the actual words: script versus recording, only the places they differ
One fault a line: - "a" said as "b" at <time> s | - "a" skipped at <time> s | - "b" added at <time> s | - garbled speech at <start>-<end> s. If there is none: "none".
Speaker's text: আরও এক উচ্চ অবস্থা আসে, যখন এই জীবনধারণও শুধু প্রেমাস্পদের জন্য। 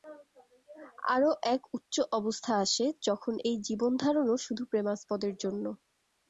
none